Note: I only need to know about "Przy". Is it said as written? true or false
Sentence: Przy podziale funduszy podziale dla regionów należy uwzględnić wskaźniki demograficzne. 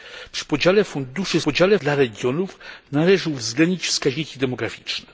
true